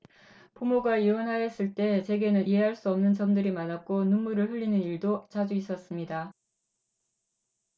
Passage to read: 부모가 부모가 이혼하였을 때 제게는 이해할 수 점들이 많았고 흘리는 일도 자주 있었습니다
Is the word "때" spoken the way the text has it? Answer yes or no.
yes